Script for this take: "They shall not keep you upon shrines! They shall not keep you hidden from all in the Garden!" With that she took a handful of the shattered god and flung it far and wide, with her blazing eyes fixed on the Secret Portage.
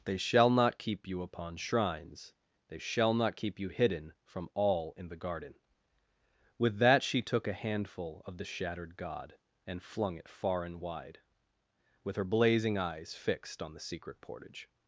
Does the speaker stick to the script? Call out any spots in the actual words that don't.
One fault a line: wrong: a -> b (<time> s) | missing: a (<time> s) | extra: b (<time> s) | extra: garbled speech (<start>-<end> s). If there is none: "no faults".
no faults